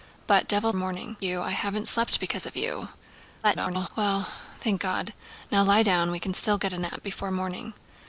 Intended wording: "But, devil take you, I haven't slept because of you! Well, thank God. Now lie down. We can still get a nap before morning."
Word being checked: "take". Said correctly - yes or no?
no